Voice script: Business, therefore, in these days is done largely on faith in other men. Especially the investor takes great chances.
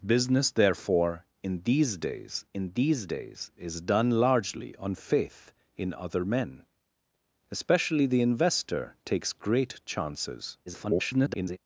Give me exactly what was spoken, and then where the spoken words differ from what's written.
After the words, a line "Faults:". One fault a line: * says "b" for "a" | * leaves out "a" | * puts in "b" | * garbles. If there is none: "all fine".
Business, therefore, in these days in these days is done largely on faith in other men. Especially the investor takes great chances. [garbled]
Faults:
* puts in "in these days"
* garbles